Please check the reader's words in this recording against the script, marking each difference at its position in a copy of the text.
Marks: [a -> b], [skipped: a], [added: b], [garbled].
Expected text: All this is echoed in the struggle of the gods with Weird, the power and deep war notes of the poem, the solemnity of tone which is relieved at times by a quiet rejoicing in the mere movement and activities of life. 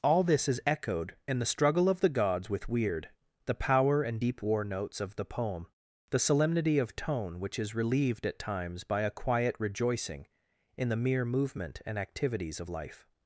All this is echoed in the struggle of the gods with Weird, the power and deep war notes of the poem, the solemnity of tone which is relieved at times by a quiet rejoicing in the mere movement and activities of life.